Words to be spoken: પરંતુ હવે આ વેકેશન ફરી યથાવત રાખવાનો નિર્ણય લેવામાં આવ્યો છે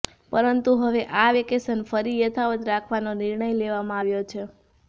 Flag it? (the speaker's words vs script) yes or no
no